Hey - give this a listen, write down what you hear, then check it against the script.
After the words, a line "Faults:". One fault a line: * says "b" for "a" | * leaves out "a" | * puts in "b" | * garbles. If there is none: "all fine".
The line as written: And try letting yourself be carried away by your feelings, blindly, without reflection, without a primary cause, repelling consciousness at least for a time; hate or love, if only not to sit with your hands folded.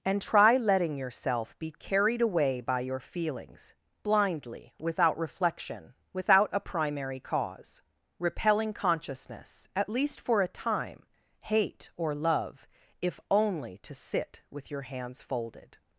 And try letting yourself be carried away by your feelings, blindly, without reflection, without a primary cause, repelling consciousness at least for a time; hate or love, if only to sit with your hands folded.
Faults:
* leaves out "not"